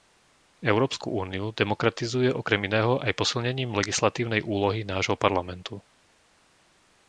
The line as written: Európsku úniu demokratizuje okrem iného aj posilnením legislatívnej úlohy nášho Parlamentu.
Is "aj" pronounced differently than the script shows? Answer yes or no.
no